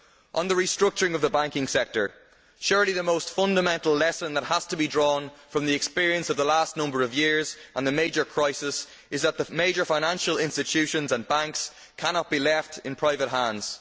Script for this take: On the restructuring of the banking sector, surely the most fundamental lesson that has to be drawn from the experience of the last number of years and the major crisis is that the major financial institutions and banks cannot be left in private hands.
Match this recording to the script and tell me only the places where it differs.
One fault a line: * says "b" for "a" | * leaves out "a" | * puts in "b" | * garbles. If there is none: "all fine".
all fine